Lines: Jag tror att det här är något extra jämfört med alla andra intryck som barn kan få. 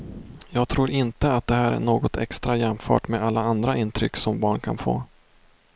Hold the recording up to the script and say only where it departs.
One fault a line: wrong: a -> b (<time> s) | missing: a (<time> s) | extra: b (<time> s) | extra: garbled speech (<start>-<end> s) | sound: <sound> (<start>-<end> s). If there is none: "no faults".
extra: inte (0.9 s)